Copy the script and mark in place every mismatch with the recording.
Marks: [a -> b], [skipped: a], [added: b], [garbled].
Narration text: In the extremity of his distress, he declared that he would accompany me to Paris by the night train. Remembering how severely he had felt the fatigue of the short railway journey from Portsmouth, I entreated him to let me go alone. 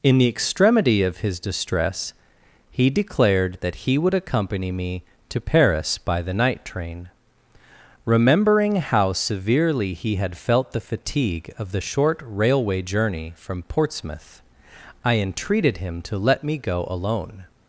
In the extremity of his distress, he declared that he would accompany me to Paris by the night train. Remembering how severely he had felt the fatigue of the short railway journey from Portsmouth, I entreated him to let me go alone.